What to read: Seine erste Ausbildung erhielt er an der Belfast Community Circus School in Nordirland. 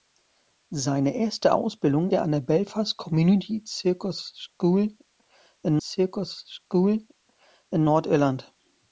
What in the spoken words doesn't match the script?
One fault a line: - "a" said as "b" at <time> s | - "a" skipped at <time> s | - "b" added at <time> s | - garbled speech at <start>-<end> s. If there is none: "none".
- "erhielt" skipped at 2.1 s
- "Circus School in" added at 5.8 s